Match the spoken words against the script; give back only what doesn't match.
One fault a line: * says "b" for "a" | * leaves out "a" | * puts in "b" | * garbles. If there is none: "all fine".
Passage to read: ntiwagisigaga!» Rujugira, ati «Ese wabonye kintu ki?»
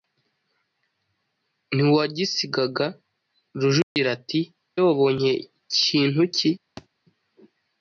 * leaves out "Ese"